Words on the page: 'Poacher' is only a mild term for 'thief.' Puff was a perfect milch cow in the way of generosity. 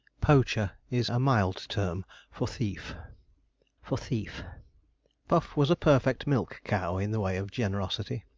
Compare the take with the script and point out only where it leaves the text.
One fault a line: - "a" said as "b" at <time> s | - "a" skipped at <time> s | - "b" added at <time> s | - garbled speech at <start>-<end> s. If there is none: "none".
- "only" skipped at 1.1 s
- "for thief" added at 3.8 s